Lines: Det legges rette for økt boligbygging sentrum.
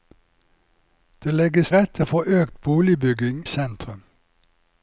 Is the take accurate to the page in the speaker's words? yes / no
yes